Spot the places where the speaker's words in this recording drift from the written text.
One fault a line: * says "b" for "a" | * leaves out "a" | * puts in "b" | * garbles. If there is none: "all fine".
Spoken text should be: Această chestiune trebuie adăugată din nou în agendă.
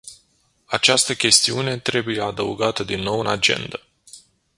all fine